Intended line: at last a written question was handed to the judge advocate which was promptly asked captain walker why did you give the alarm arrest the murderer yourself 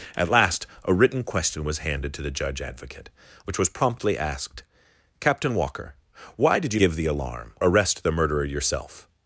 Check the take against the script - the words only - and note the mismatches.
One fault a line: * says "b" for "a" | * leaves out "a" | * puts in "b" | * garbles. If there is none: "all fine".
all fine